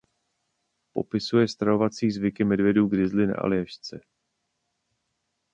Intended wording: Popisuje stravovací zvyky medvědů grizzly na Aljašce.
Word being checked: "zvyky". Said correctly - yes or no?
yes